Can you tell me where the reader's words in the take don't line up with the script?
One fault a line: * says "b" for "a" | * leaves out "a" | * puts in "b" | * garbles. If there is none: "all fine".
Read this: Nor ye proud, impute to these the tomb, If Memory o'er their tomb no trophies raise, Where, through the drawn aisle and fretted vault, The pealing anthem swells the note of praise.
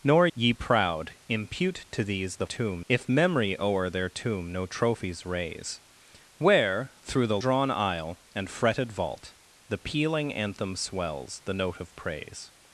all fine